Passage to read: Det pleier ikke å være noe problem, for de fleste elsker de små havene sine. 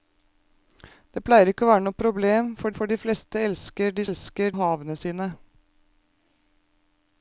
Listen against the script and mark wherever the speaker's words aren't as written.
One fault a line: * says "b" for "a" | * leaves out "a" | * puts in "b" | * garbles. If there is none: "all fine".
* puts in "for"
* says "elsker" for "små"